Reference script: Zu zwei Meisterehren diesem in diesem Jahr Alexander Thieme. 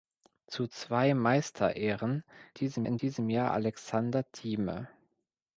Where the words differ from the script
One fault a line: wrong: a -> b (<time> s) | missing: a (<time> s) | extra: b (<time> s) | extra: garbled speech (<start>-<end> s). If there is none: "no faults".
no faults